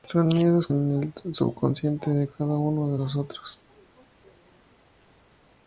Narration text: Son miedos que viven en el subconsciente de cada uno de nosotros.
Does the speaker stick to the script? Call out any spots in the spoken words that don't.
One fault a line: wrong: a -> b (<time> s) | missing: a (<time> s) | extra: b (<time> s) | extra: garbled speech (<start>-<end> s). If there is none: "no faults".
missing: que viven (0.7 s)